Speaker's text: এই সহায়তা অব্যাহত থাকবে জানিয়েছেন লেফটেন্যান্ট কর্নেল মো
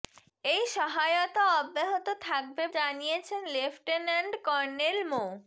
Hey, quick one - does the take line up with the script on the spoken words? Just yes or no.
yes